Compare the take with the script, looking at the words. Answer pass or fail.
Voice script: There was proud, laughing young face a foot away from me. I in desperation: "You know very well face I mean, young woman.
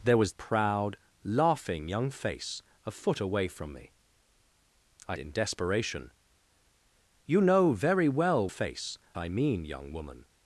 pass